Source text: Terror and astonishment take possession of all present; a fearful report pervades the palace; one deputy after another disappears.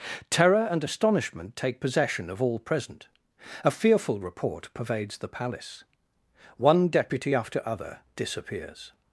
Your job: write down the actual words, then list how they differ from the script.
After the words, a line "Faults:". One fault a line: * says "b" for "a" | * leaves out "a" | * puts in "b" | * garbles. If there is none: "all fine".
Terror and astonishment take possession of all present; a fearful report pervades the palace; one deputy after other disappears.
Faults:
* says "other" for "another"